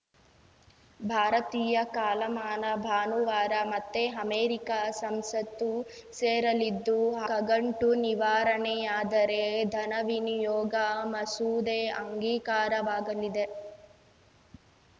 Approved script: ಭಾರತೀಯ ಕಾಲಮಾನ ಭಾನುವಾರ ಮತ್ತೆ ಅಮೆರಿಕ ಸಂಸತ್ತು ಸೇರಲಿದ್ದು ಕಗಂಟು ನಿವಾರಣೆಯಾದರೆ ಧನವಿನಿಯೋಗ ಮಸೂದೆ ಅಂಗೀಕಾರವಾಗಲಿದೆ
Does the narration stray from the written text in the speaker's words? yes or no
no